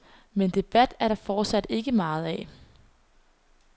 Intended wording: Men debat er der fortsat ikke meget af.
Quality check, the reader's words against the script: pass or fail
pass